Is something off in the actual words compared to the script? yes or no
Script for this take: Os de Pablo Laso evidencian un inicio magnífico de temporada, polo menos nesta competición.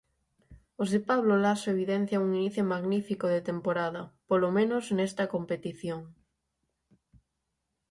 no